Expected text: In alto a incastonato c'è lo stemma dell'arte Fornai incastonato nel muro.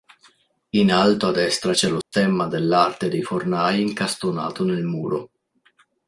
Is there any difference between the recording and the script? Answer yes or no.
yes